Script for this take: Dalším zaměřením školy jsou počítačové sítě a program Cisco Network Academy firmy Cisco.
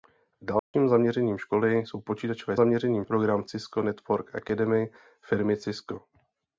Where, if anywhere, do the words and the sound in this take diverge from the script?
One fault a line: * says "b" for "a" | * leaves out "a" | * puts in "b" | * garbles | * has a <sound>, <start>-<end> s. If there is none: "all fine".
* has a dropout, 0.6-0.7 s
* says "zaměřením" for "sítě"